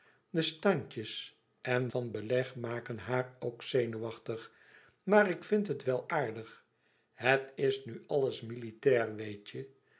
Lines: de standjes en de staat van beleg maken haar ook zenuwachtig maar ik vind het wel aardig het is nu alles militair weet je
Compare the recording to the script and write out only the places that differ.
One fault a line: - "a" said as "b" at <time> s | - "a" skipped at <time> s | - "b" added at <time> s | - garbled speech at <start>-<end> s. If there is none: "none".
- "de staat" skipped at 1.9 s